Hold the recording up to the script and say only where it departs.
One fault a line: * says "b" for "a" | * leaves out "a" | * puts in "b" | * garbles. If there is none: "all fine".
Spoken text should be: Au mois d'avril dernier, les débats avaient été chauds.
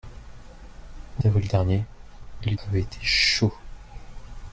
* leaves out "mois"
* leaves out "débats"